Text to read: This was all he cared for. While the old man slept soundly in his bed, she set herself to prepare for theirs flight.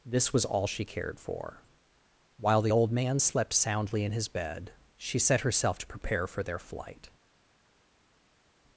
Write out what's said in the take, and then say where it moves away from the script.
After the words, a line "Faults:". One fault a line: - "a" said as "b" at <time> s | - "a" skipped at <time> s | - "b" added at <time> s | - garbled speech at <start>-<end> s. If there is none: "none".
This was all she cared for. While the old man slept soundly in his bed, she set herself to prepare for their flight.
Faults:
- "he" said as "she" at 0.7 s
- "theirs" said as "their" at 6.4 s